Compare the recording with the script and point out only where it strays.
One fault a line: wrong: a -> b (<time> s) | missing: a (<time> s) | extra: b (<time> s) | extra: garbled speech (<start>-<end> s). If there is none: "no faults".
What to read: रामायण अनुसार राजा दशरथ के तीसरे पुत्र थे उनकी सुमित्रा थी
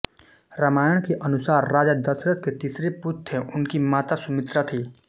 extra: के (1.0 s)
extra: माता (3.9 s)